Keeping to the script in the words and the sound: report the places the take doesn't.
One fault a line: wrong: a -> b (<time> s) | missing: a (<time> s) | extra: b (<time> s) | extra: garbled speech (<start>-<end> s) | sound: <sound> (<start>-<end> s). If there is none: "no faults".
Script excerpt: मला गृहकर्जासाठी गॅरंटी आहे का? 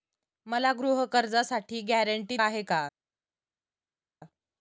no faults